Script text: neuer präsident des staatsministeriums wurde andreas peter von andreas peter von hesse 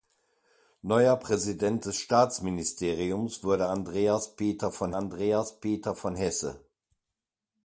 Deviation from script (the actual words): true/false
false